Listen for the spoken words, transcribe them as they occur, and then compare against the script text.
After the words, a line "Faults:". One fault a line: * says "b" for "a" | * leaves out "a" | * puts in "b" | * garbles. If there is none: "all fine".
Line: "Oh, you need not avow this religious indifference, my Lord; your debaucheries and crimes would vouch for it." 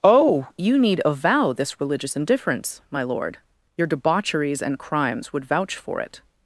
"Oh, you need avow this religious indifference, my Lord; your debaucheries and crimes would vouch for it."
Faults:
* leaves out "not"